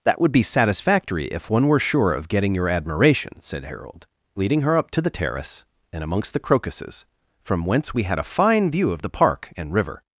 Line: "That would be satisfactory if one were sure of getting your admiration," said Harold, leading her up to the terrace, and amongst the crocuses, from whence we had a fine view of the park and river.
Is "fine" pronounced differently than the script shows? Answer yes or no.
no